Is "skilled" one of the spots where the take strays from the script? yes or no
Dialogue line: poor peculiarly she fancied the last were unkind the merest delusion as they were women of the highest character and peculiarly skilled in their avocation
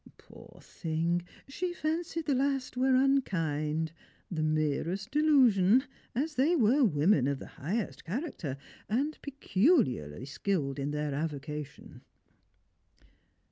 no